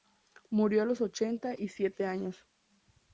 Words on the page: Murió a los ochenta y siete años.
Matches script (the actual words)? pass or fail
pass